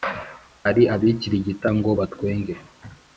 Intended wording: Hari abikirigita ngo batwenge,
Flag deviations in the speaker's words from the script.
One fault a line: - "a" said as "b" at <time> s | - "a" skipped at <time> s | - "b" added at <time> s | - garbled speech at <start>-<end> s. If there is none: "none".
none